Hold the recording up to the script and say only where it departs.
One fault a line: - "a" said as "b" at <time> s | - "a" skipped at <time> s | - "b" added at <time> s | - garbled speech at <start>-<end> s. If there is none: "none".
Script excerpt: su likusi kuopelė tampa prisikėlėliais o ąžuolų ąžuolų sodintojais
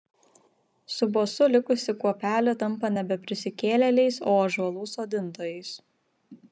- "bosu" added at 1.2 s
- "nebe" added at 3.0 s
- "ąžuolų" skipped at 4.9 s